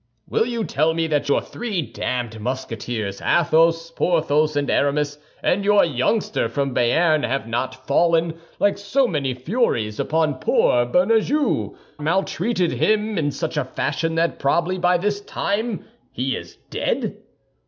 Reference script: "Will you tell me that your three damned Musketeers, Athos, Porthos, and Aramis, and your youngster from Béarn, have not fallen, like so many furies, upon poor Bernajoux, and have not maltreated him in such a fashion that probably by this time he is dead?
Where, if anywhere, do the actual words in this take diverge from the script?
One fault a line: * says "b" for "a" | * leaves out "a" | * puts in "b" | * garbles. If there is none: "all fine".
* leaves out "and have not"